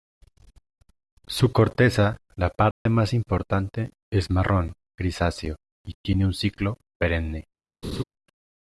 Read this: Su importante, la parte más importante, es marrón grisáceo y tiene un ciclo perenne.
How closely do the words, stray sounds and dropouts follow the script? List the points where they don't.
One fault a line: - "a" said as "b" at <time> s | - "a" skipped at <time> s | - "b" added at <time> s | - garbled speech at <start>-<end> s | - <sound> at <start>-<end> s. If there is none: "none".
- "importante" said as "corteza" at 1.5 s
- dropout at 2.7-2.9 s
- laugh at 7.8-8.0 s